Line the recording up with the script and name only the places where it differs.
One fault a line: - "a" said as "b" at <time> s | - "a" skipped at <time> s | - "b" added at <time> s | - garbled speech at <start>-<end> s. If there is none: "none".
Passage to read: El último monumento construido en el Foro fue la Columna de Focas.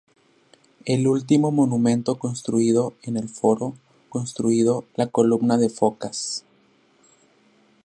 - "fue" said as "construido" at 4.1 s